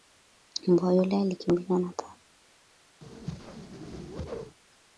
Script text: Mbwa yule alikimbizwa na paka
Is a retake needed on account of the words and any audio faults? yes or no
yes